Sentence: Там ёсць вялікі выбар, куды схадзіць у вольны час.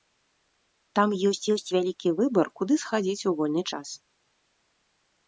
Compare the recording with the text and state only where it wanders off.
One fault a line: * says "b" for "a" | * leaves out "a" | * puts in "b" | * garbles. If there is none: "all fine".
* puts in "ёсць"